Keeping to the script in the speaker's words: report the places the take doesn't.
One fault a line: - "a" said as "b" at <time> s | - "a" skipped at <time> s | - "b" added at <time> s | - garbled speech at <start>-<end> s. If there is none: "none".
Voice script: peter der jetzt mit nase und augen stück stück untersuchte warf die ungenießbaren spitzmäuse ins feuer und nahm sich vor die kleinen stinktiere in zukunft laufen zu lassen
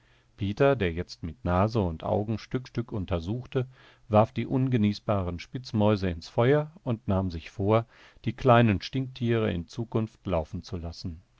none